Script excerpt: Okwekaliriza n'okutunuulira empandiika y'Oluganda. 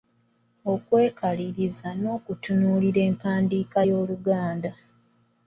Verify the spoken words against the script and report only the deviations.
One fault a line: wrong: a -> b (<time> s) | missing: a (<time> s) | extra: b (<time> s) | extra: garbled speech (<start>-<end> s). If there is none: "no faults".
no faults